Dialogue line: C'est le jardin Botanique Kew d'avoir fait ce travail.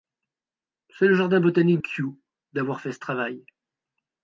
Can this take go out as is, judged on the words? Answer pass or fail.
pass